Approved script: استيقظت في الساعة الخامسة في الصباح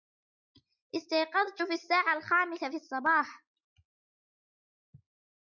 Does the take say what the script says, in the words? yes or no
yes